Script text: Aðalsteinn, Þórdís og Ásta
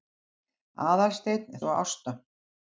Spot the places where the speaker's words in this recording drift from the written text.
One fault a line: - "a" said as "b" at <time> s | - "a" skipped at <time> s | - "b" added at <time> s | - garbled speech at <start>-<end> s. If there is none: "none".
- "Þórdís" skipped at 1.6 s